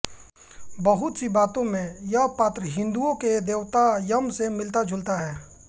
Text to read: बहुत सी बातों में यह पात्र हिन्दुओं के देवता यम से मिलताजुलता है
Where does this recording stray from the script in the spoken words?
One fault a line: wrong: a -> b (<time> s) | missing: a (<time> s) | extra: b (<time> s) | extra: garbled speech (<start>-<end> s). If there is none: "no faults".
no faults